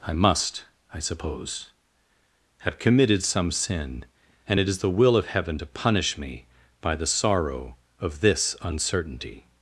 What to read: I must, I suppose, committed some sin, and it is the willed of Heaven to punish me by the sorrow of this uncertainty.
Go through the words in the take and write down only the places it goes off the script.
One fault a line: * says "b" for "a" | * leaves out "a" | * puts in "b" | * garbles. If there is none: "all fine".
* puts in "have"
* says "will" for "willed"